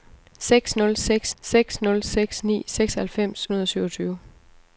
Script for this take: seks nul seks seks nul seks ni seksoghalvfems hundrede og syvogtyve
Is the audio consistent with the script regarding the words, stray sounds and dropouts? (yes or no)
yes